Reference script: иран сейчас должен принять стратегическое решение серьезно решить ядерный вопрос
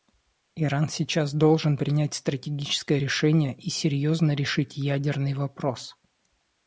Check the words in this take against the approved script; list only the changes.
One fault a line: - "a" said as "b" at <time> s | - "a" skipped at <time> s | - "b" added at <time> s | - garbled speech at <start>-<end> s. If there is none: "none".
- "и" added at 3.5 s